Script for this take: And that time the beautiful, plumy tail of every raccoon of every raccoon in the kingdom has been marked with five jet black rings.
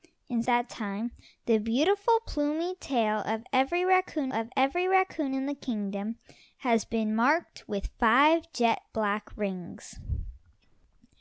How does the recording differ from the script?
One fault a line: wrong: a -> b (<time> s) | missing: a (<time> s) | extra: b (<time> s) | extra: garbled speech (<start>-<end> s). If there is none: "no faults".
no faults